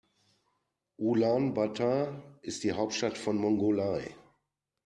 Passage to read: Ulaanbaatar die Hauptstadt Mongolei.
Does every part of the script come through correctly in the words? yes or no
no